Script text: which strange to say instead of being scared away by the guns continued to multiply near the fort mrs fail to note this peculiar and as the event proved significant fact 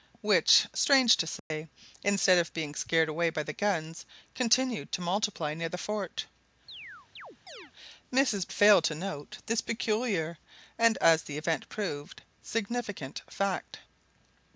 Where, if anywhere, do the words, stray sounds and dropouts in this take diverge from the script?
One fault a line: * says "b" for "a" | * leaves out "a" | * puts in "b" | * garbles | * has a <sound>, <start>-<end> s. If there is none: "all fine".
* has a dropout, 1.4-1.5 s
* has a chirp, 6.7-7.7 s